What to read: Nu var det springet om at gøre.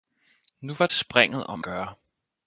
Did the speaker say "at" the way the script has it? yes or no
no